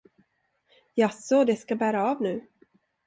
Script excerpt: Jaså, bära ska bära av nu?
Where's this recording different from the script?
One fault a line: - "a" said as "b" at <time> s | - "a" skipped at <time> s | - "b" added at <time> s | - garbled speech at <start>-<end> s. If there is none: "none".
- "bära" said as "det" at 1.4 s